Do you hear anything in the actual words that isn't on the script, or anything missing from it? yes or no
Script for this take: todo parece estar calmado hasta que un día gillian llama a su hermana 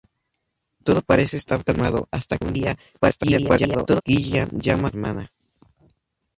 yes